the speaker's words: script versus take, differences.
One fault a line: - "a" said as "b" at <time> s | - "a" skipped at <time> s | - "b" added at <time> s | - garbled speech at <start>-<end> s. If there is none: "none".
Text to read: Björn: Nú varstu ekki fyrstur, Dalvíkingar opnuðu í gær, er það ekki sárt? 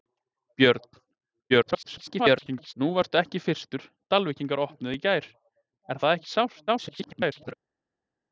- garbled speech at 1.5-2.7 s
- garbled speech at 6.7-7.5 s